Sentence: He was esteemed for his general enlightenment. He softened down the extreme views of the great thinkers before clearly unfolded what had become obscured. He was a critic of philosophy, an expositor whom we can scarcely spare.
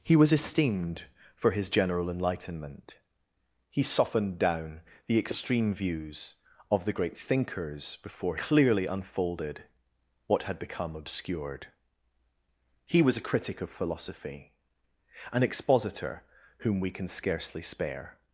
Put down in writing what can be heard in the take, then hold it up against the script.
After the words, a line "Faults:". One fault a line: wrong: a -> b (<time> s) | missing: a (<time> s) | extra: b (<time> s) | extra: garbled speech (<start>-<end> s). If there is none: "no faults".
He was esteemed for his general enlightenment. He softened down the extreme views of the great thinkers before clearly unfolded what had become obscured. He was a critic of philosophy, an expositor whom we can scarcely spare.
Faults:
no faults